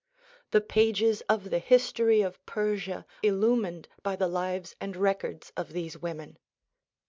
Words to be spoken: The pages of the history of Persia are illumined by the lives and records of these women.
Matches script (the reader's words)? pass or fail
fail